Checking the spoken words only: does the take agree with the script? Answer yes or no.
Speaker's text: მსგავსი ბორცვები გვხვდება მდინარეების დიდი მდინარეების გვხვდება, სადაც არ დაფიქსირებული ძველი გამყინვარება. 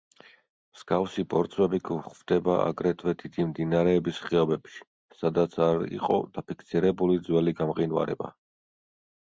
no